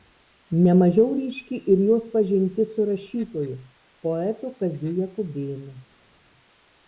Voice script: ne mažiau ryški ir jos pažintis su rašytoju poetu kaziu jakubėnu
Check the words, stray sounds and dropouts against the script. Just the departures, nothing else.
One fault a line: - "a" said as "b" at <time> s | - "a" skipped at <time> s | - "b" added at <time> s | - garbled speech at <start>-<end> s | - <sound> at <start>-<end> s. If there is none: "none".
none